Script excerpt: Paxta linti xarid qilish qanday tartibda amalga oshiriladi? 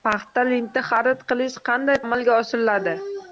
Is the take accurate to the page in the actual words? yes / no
no